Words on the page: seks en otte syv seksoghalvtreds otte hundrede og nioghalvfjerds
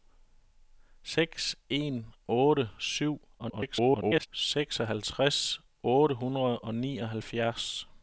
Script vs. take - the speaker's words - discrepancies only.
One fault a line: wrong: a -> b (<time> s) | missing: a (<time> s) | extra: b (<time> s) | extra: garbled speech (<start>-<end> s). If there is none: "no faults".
extra: garbled speech (3.4-4.3 s)